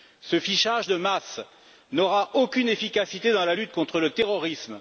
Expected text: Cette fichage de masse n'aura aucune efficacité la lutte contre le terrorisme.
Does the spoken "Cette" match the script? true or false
false